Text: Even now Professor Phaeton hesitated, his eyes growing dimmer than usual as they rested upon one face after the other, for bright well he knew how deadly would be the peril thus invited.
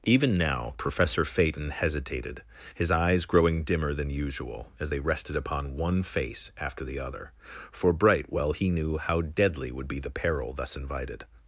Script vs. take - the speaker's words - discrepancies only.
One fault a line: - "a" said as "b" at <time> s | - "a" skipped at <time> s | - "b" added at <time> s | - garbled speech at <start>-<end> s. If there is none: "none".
none